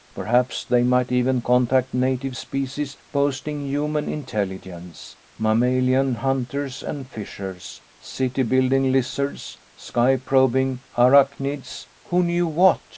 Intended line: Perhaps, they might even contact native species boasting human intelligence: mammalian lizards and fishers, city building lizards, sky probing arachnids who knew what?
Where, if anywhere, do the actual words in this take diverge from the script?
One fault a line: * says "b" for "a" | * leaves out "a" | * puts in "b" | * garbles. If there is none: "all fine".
* says "hunters" for "lizards"